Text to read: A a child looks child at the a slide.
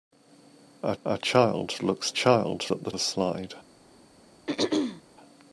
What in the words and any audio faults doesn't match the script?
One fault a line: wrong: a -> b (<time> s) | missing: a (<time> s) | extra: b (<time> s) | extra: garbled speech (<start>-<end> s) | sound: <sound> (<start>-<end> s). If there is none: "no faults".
sound: throat clearing (4.5-5.0 s)